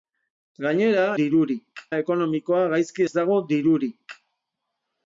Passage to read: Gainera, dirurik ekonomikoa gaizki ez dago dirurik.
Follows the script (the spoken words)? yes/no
yes